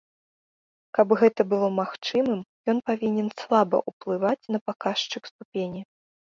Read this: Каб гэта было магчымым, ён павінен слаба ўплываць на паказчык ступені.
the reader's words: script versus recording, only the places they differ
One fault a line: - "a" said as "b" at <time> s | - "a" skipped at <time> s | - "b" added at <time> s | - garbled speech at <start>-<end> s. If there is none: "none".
none